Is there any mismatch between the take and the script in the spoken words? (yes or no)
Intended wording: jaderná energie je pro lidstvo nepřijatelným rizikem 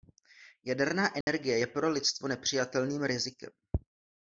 no